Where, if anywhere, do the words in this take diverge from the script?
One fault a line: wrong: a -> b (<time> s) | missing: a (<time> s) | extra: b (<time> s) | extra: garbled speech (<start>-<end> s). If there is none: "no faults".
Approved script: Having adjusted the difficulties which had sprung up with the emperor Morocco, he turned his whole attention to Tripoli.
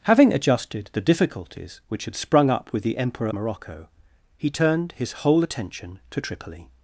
no faults